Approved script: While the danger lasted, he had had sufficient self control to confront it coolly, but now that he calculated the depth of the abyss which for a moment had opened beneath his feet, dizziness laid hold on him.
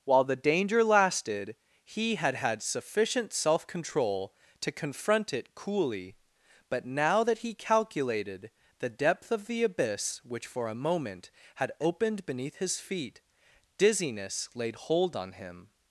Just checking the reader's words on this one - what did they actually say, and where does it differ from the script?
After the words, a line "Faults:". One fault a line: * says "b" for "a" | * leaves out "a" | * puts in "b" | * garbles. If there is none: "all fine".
While the danger lasted, he had had sufficient self control to confront it coolly, but now that he calculated the depth of the abyss which for a moment had opened beneath his feet, dizziness laid hold on him.
Faults:
all fine